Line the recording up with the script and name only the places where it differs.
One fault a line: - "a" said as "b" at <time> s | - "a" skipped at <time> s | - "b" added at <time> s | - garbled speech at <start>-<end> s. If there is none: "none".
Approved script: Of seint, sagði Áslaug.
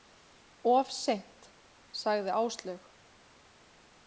none